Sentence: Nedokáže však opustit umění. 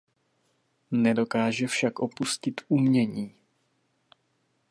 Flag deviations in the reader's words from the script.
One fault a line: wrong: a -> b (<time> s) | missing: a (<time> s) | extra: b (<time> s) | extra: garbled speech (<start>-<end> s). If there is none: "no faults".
no faults